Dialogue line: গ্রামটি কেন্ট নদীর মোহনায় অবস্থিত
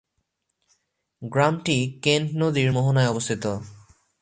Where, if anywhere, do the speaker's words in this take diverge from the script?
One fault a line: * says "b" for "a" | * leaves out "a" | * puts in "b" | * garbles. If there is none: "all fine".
all fine